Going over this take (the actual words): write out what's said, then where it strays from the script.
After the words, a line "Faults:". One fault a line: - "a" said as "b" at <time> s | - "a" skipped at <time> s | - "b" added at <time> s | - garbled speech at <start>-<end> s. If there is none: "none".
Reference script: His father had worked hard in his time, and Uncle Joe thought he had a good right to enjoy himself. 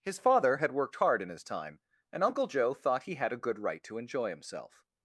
His father had worked hard in his time, and Uncle Joe thought he had a good right to enjoy himself.
Faults:
none